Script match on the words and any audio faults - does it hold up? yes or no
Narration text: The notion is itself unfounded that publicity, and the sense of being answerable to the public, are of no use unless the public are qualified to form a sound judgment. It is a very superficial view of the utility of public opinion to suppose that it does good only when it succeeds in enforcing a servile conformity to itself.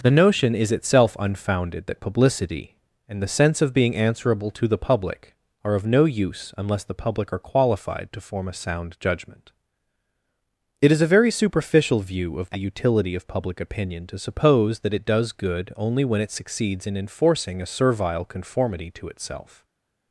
yes